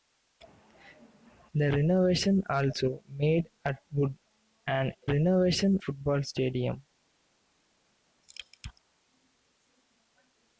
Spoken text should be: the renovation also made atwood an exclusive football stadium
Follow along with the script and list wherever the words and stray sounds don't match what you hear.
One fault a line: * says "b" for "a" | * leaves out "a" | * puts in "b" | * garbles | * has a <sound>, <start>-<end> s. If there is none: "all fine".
* says "renovation" for "exclusive"